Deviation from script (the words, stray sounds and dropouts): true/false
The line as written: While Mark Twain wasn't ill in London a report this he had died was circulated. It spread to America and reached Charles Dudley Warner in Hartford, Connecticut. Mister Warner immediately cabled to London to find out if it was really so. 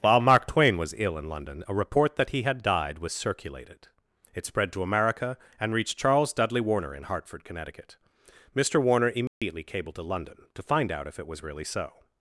true